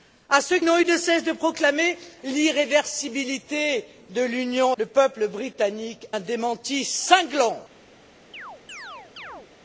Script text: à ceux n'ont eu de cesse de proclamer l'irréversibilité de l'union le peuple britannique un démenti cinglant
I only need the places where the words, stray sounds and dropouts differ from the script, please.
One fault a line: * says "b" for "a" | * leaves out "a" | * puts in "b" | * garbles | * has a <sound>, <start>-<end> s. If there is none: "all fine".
* has a chirp, 8.3-9.5 s